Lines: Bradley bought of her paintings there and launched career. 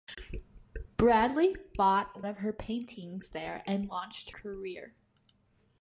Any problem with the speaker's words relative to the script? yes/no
no